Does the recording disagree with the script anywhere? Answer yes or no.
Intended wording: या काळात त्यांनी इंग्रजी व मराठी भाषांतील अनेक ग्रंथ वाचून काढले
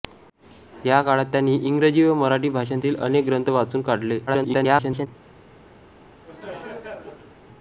yes